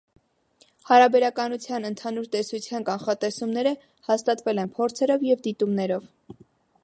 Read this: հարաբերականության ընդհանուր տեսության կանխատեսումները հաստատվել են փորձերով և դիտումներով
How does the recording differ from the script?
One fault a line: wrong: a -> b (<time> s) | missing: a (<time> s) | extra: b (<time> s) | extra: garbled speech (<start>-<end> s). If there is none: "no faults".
no faults